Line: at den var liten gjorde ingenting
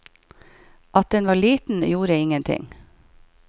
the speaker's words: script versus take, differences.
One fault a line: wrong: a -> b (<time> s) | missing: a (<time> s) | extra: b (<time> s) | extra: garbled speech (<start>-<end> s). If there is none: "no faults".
no faults